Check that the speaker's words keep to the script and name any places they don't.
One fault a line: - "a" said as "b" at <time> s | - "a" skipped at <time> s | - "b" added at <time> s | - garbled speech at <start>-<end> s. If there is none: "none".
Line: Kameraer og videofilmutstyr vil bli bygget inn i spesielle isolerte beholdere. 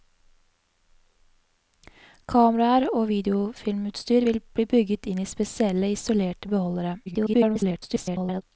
- garbled speech at 7.1-8.4 s